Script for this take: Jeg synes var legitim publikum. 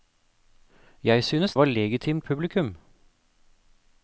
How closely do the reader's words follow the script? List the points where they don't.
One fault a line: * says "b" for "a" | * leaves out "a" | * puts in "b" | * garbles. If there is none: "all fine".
all fine